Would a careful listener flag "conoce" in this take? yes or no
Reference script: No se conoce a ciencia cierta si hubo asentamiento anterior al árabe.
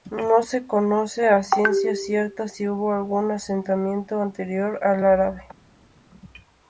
no